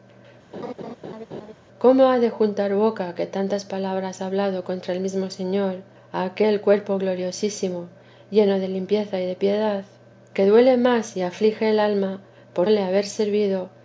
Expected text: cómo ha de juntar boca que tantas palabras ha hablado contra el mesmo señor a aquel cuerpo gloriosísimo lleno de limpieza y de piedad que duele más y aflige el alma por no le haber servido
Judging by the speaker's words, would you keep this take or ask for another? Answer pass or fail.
fail